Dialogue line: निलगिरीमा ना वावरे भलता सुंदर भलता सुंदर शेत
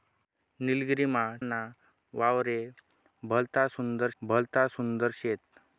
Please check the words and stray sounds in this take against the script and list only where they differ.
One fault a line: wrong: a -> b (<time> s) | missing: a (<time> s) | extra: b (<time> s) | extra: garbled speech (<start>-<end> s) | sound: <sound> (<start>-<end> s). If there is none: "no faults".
no faults